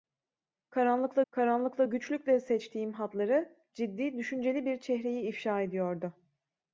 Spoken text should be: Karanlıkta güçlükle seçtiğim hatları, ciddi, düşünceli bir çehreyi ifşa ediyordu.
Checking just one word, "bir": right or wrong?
right